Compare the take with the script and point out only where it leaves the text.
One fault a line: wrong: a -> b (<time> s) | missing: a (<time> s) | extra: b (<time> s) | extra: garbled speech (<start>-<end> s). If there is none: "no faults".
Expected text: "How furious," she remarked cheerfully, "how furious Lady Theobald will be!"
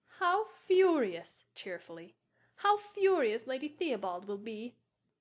missing: she remarked (1.4 s)